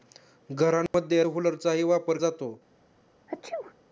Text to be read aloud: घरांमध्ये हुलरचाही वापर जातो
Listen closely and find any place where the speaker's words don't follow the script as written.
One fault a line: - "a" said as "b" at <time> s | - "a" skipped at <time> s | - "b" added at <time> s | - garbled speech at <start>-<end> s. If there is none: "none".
none